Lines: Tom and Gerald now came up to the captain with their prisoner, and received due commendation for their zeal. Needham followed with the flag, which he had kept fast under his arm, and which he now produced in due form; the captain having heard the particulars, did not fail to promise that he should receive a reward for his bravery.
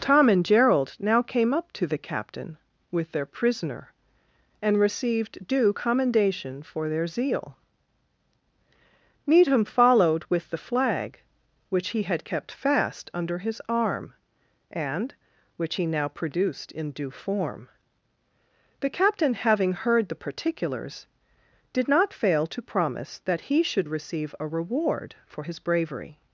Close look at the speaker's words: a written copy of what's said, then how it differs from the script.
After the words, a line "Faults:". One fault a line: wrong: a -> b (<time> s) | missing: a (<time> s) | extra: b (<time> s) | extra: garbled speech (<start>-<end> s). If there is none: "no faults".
Tom and Gerald now came up to the captain with their prisoner, and received due commendation for their zeal. Needham followed with the flag, which he had kept fast under his arm, and which he now produced in due form; the captain having heard the particulars, did not fail to promise that he should receive a reward for his bravery.
Faults:
no faults